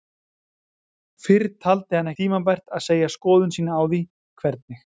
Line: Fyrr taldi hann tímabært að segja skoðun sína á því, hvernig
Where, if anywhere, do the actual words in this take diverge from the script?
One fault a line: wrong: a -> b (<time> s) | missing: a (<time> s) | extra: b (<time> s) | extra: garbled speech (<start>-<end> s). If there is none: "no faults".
no faults